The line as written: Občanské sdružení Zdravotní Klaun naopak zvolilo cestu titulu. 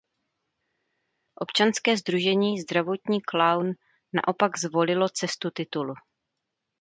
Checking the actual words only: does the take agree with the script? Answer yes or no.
yes